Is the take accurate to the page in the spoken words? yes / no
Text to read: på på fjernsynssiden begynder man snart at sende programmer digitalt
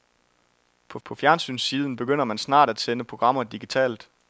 yes